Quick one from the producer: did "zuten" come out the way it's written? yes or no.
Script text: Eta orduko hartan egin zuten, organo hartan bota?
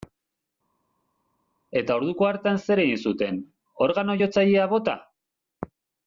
yes